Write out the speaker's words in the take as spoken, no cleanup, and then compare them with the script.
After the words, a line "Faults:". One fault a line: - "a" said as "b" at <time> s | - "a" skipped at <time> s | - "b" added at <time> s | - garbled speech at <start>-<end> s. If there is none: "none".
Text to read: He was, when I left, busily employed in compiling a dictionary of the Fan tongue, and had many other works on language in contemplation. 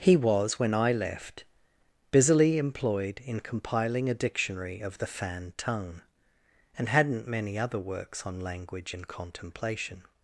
He was, when I left, busily employed in compiling a dictionary of the Fan tongue, and hadn't many other works on language in contemplation.
Faults:
- "had" said as "hadn't" at 6.9 s